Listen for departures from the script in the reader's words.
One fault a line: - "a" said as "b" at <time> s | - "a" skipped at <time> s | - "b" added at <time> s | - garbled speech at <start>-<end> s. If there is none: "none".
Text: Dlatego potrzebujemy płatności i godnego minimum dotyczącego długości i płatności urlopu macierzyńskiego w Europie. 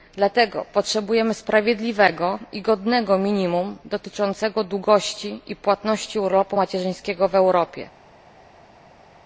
- "płatności" said as "sprawiedliwego" at 1.3 s